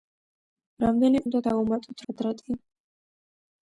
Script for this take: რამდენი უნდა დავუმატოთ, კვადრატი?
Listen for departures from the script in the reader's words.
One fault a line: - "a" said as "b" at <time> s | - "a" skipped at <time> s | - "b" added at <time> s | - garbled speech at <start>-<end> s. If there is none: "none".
none